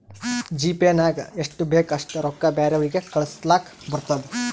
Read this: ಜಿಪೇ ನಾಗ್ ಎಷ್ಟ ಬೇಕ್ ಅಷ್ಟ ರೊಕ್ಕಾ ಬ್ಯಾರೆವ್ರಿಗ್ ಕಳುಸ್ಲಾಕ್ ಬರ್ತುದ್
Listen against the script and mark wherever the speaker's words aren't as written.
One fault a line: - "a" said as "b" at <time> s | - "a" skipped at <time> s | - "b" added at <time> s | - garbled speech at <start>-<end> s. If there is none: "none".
none